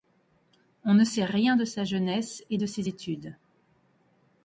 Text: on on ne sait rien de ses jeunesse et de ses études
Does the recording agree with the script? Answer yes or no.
no